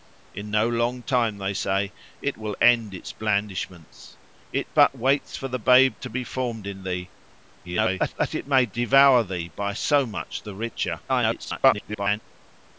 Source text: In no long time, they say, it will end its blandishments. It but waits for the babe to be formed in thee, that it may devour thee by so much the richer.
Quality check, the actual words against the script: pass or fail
fail